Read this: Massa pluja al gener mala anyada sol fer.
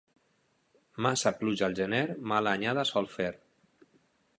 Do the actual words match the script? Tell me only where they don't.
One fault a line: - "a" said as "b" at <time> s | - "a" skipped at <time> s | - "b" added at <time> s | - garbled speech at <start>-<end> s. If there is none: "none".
none